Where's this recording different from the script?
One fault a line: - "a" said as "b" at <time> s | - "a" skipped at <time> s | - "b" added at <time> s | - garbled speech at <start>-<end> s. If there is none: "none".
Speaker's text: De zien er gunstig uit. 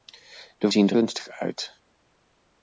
none